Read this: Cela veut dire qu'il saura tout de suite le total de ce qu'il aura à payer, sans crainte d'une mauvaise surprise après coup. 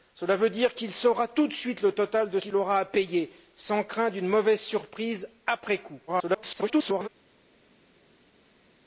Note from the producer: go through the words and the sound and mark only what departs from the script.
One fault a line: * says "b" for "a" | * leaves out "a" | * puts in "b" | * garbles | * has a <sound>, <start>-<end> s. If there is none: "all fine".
* leaves out "ce"
* garbles